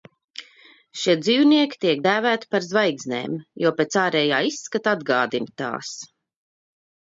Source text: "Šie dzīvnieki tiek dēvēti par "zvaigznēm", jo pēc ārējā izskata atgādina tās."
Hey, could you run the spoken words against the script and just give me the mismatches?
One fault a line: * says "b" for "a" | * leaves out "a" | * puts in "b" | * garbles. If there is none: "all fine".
all fine